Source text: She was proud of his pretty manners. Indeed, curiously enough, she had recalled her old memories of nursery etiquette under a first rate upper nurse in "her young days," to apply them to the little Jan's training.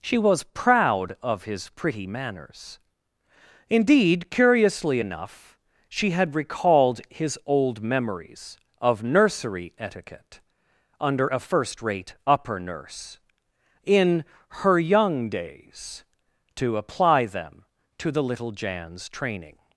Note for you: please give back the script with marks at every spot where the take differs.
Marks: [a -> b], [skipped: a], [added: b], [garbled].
She was proud of his pretty manners. Indeed, curiously enough, she had recalled [her -> his] old memories of nursery etiquette under a first rate upper nurse in "her young days," to apply them to the little Jan's training.